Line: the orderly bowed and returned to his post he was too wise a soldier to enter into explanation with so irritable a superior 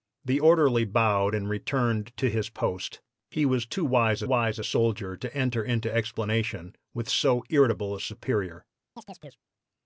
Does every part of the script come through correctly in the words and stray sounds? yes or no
no